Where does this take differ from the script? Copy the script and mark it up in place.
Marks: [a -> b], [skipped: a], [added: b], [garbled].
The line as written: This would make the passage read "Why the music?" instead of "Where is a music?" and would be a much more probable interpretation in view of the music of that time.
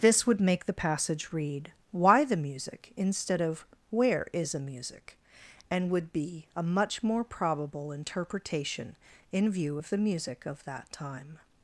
This would make the passage read "Why the music?" instead of "Where is a music?" and would be a much more probable interpretation in view of the music of that time.